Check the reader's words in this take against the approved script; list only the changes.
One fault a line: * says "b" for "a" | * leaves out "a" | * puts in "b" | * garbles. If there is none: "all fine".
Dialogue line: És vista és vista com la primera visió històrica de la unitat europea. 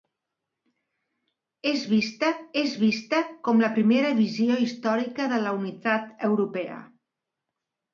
all fine